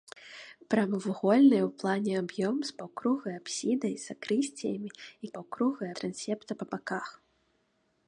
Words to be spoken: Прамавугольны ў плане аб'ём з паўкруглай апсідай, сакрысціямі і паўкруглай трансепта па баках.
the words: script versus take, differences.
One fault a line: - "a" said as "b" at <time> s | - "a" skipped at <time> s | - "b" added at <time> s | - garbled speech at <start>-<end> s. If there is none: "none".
none